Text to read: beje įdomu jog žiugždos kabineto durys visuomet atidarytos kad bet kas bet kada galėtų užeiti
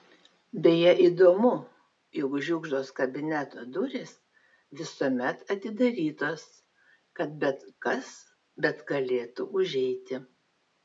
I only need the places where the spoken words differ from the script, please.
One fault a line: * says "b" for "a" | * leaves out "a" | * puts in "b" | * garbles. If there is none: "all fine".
* leaves out "kada"